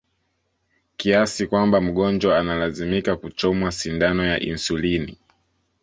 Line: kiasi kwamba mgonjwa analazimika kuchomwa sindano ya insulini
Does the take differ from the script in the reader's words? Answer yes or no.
no